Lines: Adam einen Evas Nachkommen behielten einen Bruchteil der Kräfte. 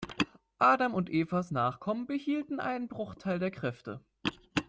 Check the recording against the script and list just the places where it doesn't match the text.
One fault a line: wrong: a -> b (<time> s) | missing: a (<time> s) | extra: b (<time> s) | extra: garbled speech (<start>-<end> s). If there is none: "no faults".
wrong: einen -> und (0.9 s)